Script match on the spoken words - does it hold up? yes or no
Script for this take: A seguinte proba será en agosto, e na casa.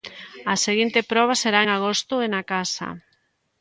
yes